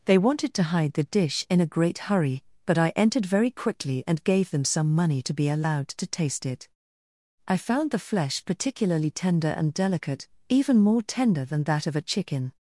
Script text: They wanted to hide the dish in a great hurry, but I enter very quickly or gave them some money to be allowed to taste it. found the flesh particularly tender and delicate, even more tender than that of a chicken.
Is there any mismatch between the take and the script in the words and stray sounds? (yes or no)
yes